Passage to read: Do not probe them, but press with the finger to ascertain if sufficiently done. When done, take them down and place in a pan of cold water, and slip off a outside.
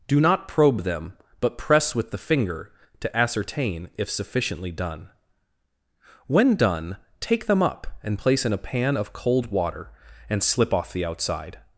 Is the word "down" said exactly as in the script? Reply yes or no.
no